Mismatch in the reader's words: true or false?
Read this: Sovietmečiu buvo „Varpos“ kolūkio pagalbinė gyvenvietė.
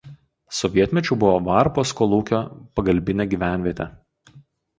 false